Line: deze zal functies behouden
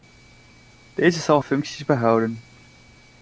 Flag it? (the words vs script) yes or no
no